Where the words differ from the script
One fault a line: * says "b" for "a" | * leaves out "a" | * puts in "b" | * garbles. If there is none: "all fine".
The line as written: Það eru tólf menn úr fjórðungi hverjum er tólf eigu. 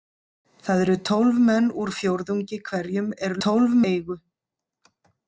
all fine